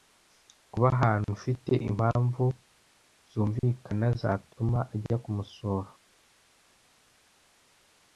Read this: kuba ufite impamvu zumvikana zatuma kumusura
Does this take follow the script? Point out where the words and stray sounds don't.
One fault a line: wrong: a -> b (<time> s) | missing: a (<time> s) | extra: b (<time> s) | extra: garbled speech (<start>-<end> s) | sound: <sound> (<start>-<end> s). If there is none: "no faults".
extra: ahantu (0.9 s)
extra: ajya (4.9 s)